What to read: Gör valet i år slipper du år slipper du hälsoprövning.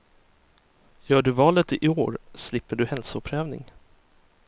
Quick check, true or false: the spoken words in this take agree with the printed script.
false